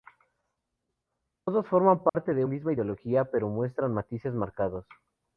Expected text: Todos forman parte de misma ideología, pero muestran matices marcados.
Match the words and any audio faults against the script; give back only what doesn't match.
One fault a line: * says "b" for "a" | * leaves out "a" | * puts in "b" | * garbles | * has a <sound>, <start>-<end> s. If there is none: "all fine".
* has a dropout, 2.1-2.1 s